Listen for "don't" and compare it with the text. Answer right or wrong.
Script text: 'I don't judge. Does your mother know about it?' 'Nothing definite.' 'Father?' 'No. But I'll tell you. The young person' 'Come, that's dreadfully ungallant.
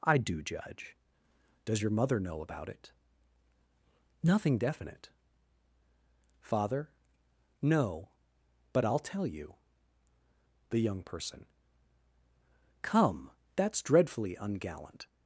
wrong